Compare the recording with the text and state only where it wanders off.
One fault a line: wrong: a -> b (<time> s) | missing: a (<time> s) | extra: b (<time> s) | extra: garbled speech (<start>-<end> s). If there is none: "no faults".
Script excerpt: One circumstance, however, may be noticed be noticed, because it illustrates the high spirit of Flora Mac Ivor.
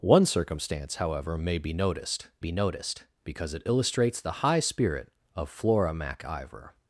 no faults